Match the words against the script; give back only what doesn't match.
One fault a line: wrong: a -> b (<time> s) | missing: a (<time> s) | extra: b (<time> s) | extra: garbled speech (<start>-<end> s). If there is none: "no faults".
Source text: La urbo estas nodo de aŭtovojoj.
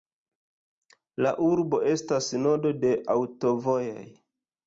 no faults